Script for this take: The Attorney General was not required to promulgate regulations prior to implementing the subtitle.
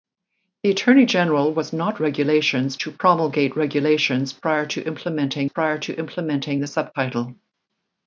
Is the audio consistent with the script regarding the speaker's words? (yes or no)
no